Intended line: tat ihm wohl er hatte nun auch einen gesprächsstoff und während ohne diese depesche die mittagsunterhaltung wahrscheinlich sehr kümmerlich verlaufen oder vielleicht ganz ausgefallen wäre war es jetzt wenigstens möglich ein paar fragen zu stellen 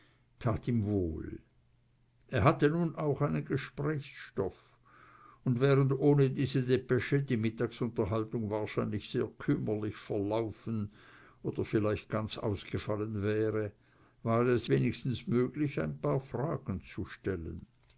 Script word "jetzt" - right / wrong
wrong